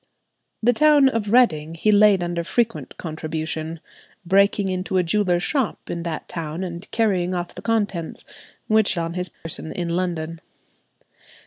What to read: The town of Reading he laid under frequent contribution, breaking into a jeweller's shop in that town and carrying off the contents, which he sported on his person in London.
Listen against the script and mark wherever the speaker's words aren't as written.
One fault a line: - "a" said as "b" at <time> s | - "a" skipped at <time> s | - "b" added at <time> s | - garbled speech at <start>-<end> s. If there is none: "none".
- "he sported" skipped at 8.9 s